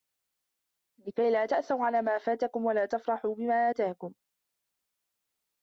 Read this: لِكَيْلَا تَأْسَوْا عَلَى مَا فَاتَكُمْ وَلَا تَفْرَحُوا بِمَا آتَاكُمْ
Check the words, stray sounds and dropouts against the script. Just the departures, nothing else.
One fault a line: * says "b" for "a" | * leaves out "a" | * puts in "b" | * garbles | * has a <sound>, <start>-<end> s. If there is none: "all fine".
all fine